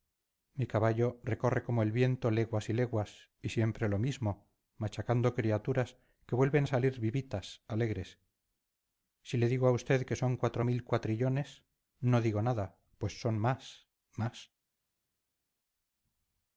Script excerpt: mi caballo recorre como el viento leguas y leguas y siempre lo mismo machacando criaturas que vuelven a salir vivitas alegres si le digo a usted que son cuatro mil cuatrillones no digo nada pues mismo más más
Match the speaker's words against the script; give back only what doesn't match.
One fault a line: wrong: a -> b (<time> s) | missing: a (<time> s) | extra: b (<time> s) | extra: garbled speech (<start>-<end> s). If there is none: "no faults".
wrong: mismo -> son (13.2 s)